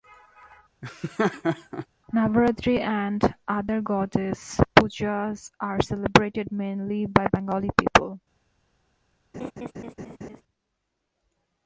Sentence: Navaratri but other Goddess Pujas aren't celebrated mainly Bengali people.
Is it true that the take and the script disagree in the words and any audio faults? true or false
true